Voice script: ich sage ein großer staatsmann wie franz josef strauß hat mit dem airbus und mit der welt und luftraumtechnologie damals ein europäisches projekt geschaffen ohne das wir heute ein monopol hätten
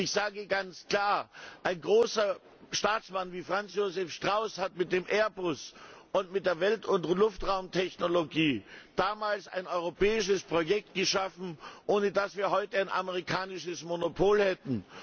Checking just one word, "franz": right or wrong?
right